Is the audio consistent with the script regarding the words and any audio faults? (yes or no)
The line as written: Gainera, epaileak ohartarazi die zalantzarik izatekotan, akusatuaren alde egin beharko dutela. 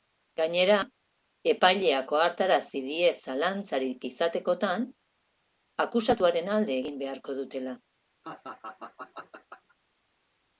no